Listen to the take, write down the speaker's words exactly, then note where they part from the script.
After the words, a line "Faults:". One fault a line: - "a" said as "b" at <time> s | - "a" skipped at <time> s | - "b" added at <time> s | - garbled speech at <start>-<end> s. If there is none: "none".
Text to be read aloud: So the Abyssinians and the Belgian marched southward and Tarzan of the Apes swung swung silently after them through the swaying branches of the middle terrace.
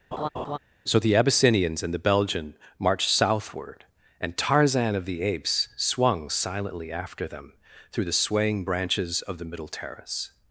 So the Abyssinians and the Belgian marched southward and Tarzan of the Apes swung silently after them through the swaying branches of the middle terrace.
Faults:
- "swung" skipped at 6.3 s